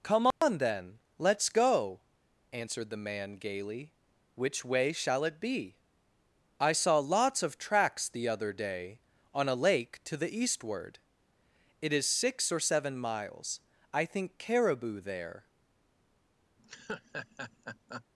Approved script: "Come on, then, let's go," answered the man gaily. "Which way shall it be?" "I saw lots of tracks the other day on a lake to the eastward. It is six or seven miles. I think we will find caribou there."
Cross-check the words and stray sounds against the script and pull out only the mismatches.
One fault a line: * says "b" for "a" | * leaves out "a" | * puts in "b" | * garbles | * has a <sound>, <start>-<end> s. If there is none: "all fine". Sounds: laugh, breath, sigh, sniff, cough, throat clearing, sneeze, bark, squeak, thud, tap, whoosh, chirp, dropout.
* has a dropout, 0.3-0.4 s
* leaves out "we will find"
* has a laugh, 16.6-18.1 s